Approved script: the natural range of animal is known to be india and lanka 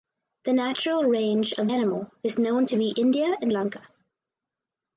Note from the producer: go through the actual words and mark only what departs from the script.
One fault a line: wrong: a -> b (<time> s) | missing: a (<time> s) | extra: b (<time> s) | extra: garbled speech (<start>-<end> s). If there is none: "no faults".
no faults